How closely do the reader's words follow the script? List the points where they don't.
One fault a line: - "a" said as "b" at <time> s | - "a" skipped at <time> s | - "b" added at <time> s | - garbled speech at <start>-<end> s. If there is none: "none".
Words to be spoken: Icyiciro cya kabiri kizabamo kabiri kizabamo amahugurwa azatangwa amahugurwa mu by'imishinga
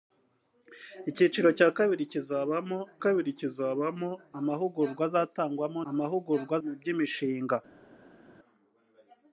none